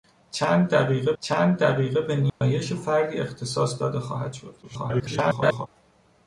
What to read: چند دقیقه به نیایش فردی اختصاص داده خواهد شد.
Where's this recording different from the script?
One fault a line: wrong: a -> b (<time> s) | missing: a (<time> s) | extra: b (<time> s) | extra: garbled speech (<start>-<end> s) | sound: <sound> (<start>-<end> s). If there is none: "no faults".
extra: چند دقیقه (1.2 s)
sound: dropout (2.3-2.4 s)
extra: garbled speech (4.6-5.7 s)